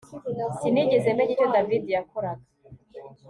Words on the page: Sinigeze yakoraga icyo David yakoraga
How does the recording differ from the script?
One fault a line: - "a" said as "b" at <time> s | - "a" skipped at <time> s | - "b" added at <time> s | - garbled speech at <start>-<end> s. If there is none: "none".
- "yakoraga" said as "menya" at 1.2 s